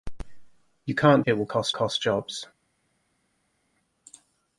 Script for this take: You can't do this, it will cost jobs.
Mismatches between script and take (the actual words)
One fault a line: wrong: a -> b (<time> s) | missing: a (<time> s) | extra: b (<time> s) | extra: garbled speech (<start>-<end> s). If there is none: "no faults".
missing: do this (1.2 s)
extra: cost (1.7 s)